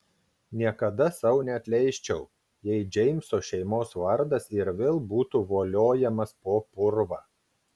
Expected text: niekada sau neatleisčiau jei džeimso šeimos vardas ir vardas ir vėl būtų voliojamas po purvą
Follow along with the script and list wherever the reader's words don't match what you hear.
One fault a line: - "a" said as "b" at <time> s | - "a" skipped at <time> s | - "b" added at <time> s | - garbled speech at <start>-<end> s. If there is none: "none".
- "vardas ir" skipped at 4.7 s